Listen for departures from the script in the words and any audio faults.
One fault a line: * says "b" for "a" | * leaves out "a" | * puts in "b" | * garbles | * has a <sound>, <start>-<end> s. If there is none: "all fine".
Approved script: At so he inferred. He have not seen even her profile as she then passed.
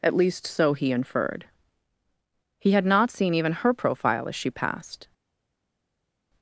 * puts in "least"
* says "had" for "have"
* leaves out "then"